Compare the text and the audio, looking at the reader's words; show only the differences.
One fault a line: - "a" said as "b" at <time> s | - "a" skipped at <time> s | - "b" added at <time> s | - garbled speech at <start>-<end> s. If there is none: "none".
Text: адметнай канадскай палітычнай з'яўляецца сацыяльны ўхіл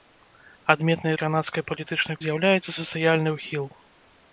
none